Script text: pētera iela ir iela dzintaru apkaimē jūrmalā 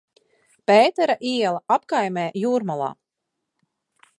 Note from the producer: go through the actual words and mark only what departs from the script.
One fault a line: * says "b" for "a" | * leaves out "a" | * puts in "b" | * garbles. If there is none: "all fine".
* leaves out "ir iela dzintaru"